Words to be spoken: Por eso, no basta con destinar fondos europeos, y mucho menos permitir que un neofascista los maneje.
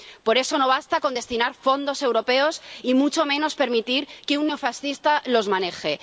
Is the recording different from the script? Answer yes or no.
no